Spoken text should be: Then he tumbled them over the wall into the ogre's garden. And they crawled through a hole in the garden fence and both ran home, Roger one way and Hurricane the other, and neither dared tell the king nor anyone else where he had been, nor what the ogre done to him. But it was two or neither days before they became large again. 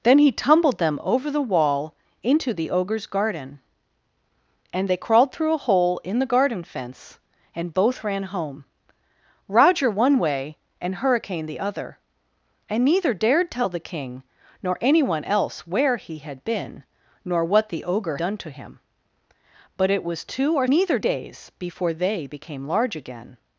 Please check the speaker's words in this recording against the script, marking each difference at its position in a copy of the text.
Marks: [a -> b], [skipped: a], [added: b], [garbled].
Then he tumbled them over the wall into the ogre's garden. And they crawled through a hole in the garden fence and both ran home, Roger one way and Hurricane the other, and neither dared tell the king nor anyone else where he had been, nor what the ogre done to him. But it was two or neither days before they became large again.